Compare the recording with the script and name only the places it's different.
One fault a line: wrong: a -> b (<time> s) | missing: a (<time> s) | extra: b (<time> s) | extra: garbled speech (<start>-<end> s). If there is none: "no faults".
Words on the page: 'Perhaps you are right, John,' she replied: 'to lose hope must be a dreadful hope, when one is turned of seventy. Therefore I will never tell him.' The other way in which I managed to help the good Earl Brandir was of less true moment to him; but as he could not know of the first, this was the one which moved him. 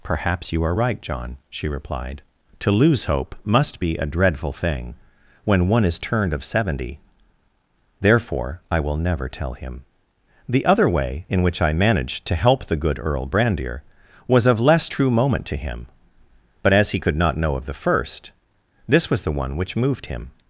wrong: hope -> thing (4.5 s)